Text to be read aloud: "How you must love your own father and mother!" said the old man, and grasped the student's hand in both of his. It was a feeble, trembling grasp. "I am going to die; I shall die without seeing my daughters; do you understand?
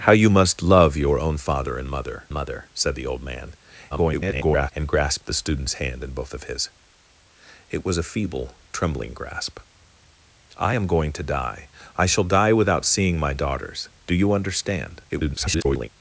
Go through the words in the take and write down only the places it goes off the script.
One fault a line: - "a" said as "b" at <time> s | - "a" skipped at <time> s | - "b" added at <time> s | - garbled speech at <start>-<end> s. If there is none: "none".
- "mother" added at 2.3 s
- garbled speech at 3.9-4.7 s
- garbled speech at 15.1-15.9 s